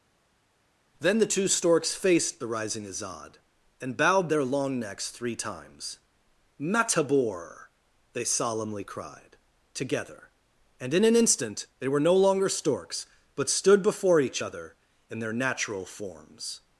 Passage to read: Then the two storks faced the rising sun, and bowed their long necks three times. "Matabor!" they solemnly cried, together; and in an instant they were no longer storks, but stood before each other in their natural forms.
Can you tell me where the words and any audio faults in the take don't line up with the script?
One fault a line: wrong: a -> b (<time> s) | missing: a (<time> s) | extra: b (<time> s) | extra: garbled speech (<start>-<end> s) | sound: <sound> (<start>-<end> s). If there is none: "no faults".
wrong: sun -> azad (2.9 s)